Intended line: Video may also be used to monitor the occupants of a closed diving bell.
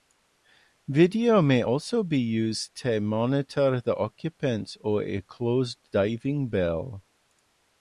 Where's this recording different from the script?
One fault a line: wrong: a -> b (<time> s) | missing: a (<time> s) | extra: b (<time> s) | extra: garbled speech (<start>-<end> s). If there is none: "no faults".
no faults